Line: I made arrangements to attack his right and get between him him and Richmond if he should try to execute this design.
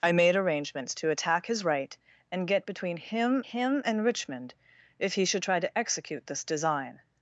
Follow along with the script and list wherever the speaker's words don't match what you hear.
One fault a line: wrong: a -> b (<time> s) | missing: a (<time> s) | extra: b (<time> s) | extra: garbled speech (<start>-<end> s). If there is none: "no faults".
no faults